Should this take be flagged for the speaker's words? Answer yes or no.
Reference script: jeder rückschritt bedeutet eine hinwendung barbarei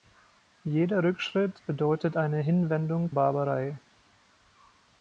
no